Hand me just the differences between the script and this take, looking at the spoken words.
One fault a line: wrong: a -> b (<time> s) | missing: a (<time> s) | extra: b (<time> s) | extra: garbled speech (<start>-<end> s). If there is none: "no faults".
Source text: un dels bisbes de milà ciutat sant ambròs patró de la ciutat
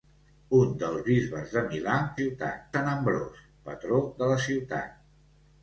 no faults